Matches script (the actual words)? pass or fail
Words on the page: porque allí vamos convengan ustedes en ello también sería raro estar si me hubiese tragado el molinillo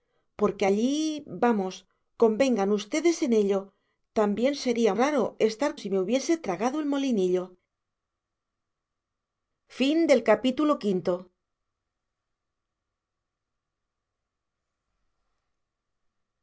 pass